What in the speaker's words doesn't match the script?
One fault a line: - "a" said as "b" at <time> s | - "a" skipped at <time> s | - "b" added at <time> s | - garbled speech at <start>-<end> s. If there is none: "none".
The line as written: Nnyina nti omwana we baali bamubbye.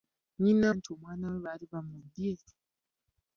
none